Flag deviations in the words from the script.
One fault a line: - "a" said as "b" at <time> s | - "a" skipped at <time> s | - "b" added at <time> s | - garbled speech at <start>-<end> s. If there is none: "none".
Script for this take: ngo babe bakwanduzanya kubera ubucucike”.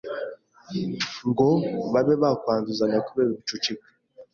none